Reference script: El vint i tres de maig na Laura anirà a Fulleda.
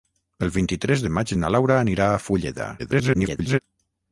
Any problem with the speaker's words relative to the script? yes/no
yes